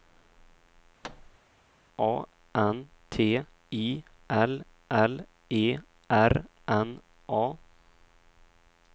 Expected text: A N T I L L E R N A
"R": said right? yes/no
yes